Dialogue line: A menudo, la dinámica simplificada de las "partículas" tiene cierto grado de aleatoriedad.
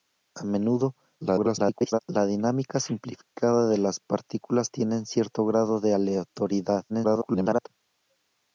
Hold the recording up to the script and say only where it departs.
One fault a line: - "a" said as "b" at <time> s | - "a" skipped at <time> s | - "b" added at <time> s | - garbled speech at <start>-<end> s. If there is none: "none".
- garbled speech at 1.2-2.0 s
- garbled speech at 6.9-7.7 s